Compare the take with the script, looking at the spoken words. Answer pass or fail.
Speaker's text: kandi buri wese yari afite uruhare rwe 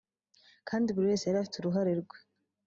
pass